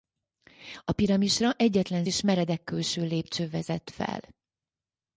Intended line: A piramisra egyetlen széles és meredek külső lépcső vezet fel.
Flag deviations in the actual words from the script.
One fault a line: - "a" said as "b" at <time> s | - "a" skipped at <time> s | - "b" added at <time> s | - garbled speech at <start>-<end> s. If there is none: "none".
- "széles" skipped at 2.0 s